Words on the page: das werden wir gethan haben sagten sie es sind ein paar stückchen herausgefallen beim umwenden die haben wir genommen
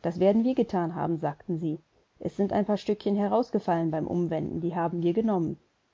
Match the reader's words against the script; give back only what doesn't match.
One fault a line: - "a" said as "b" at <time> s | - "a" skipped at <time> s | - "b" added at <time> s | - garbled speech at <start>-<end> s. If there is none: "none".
none